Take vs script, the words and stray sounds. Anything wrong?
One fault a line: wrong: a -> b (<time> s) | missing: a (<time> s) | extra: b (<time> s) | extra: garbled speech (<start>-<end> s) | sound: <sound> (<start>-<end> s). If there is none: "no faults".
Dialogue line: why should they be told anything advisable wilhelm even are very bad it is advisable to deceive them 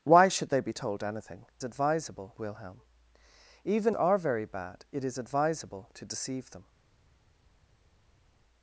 no faults